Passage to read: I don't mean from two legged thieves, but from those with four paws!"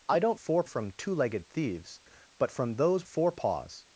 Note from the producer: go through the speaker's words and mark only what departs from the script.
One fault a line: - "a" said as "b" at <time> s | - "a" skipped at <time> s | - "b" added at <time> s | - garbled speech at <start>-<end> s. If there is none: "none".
- "mean" said as "four" at 0.3 s
- "with" skipped at 3.0 s